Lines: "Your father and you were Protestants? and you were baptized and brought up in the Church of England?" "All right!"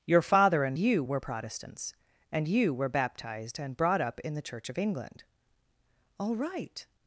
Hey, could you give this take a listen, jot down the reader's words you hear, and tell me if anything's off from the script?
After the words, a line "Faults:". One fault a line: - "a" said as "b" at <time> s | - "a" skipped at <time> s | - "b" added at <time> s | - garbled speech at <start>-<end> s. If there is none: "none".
"Your father and you were Protestants? and you were baptized and brought up in the Church of England?" "All right!"
Faults:
none